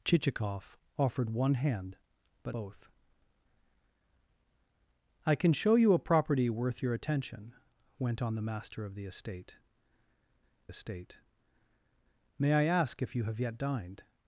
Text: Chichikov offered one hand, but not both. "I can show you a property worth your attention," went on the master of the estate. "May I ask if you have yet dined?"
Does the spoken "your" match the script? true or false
true